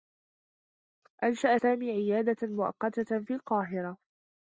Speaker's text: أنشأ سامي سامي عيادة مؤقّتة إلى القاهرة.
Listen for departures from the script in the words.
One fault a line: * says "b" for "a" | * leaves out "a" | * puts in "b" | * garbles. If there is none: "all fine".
* leaves out "سامي"
* says "في" for "إلى"